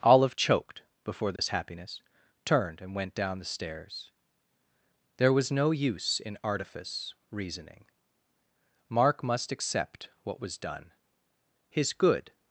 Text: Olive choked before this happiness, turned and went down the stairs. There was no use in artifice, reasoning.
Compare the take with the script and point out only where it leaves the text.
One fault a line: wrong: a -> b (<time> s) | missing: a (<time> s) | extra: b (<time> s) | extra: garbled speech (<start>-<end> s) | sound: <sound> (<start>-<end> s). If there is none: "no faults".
sound: dropout (1.4-1.4 s)
extra: Mark must accept what was done His good (8.9 s)